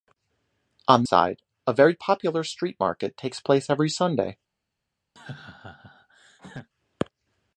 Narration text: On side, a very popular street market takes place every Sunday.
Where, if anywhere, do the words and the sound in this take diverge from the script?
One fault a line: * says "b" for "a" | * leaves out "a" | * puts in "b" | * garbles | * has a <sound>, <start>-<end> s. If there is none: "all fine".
* has a laugh, 5.2-6.7 s